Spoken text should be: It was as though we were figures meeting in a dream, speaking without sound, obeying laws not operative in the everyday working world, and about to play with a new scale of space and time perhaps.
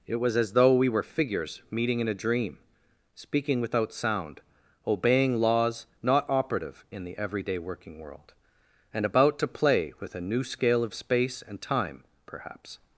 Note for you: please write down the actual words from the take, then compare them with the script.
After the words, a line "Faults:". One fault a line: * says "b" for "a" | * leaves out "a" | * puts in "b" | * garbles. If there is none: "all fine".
It was as though we were figures meeting in a dream, speaking without sound, obeying laws not operative in the everyday working world, and about to play with a new scale of space and time perhaps.
Faults:
all fine